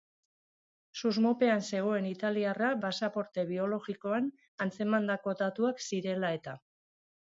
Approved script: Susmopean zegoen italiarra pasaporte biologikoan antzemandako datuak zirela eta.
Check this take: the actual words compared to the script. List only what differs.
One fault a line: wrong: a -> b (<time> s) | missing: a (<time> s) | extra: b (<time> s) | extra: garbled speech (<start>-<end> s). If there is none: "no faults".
no faults